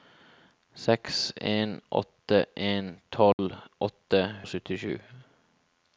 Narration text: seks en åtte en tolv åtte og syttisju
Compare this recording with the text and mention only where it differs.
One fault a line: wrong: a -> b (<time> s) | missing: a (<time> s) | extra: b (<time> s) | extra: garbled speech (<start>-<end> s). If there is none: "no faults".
no faults